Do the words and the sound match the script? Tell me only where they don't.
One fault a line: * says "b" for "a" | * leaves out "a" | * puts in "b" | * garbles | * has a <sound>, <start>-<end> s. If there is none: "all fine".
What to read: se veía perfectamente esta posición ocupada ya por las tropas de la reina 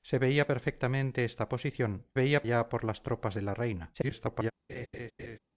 * says "veía" for "ocupada"
* garbles
* has a laugh, 4.7-5.4 s